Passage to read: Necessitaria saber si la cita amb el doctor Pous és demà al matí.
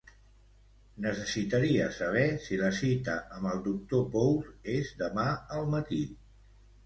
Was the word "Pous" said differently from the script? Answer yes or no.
no